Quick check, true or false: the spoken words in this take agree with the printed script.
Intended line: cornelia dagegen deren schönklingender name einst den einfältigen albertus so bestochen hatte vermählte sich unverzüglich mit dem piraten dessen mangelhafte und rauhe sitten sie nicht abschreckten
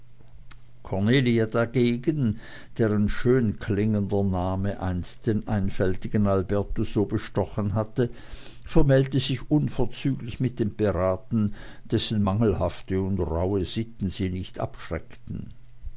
true